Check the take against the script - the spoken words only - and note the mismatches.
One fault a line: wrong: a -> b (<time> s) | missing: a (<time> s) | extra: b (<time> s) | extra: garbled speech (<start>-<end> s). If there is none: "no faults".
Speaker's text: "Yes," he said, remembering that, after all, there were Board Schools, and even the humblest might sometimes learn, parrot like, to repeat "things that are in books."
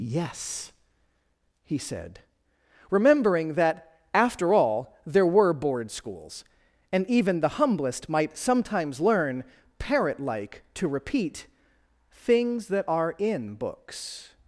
no faults